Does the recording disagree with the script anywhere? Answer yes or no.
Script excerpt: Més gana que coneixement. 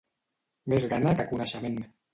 no